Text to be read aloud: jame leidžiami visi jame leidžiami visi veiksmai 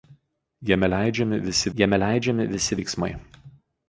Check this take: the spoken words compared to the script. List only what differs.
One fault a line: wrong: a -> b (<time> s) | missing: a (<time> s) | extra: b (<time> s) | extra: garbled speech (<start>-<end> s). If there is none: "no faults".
no faults